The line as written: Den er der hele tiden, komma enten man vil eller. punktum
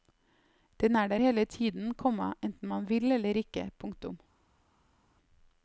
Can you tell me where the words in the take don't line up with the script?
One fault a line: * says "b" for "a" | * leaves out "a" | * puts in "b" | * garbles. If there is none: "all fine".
* puts in "ikke"